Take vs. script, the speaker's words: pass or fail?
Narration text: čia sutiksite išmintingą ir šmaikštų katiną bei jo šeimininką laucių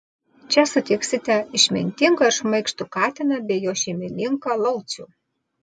pass